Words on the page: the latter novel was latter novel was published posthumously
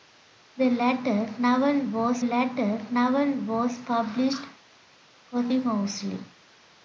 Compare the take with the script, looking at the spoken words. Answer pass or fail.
pass